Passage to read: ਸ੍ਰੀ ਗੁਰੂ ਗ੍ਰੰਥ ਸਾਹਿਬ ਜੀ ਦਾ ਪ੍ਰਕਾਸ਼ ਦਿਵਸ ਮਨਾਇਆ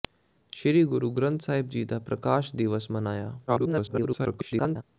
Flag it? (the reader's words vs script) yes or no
yes